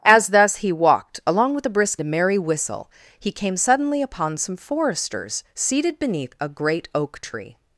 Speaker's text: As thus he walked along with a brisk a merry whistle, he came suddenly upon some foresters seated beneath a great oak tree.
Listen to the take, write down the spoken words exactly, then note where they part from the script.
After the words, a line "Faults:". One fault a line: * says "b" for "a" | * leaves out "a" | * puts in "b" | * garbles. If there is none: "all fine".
As thus he walked along with a brisk a merry whistle, he came suddenly upon some foresters seated beneath a great oak tree.
Faults:
all fine